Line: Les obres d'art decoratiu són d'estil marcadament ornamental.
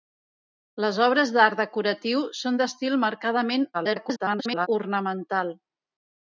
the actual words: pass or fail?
fail